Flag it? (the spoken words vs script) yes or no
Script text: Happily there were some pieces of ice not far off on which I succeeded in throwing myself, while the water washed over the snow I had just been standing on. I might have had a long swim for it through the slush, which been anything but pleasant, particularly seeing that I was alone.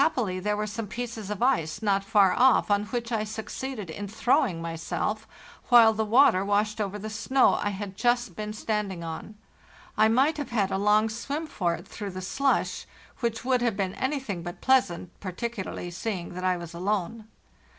yes